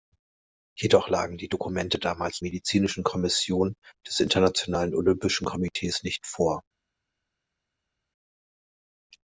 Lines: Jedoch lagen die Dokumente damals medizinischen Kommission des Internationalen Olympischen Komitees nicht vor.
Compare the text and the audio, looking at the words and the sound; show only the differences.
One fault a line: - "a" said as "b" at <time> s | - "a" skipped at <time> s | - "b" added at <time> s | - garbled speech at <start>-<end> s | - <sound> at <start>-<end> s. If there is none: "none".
none